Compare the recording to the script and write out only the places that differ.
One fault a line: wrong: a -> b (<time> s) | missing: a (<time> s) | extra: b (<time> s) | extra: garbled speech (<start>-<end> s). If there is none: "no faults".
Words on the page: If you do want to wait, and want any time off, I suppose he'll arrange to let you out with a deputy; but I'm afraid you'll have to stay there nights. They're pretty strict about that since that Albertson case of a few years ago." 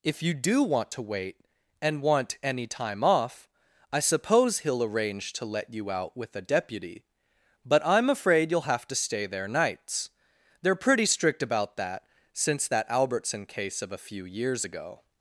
no faults